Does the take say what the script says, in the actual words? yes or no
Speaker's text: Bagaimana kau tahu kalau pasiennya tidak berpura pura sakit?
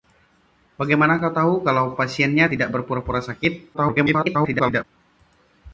no